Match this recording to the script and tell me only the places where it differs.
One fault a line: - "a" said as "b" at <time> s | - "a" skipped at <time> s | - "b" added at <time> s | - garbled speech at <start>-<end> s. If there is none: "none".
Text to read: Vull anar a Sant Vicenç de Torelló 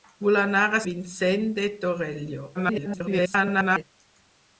- "Sant" skipped at 0.8 s
- garbled speech at 2.5-3.8 s